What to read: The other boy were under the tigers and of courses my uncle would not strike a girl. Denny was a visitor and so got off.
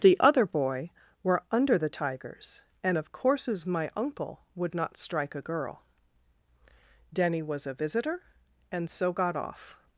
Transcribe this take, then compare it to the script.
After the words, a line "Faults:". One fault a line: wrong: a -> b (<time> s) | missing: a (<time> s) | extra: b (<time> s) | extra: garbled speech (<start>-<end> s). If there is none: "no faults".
The other boy were under the tigers and of courses my uncle would not strike a girl. Denny was a visitor and so got off.
Faults:
no faults